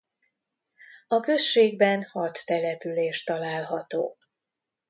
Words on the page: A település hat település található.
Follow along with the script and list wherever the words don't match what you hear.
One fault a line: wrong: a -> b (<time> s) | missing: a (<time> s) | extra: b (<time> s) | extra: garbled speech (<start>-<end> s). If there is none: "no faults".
wrong: település -> községben (1.2 s)